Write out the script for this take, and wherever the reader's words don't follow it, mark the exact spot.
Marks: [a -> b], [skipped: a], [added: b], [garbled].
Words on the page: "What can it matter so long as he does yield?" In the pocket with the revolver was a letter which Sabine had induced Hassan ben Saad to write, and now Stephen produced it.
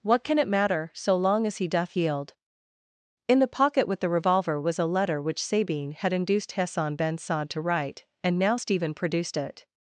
"What can it matter so long as he [does -> doth] yield?" In the pocket with the revolver was a letter which Sabine had induced Hassan ben Saad to write, and now Stephen produced it.